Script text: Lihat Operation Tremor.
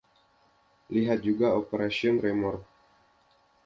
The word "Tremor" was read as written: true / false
true